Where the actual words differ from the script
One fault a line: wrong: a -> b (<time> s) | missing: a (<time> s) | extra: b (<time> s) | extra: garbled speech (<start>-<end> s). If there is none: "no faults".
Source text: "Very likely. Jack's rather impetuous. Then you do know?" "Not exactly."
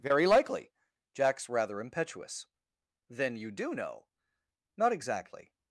no faults